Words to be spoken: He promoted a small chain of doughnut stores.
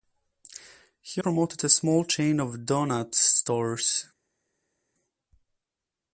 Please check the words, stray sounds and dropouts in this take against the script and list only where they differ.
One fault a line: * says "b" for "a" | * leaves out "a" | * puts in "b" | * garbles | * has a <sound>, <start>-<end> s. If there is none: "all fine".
all fine